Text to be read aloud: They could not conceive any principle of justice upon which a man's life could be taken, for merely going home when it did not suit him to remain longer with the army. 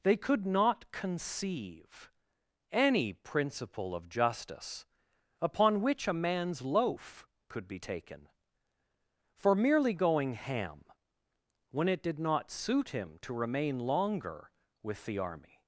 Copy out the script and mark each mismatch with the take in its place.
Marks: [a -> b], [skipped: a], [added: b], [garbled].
They could not conceive any principle of justice upon which a man's [life -> loaf] could be taken, for merely going [home -> ham] when it did not suit him to remain longer with the army.